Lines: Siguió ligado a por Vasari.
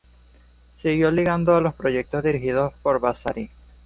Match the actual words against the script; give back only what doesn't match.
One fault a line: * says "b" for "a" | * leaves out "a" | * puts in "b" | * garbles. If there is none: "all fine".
* puts in "los proyectos dirigidos"